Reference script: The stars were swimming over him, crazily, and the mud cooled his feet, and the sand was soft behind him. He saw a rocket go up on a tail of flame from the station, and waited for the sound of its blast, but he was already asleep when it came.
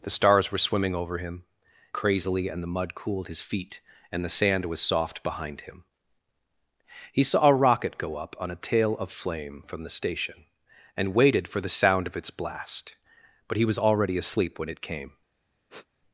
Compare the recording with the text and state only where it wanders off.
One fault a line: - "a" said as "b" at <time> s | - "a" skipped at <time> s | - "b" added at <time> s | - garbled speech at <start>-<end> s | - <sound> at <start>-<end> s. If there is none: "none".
- sniff at 15.7-15.9 s